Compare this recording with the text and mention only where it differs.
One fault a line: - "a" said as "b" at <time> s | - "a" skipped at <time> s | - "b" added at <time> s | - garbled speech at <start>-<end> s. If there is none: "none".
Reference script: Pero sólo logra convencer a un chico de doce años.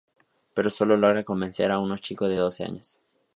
none